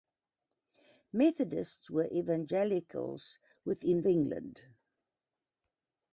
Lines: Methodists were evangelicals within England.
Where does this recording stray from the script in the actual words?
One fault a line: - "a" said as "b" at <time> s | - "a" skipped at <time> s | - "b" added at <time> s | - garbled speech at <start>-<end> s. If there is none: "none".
none